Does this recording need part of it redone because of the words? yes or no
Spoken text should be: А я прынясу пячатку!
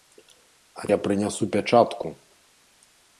no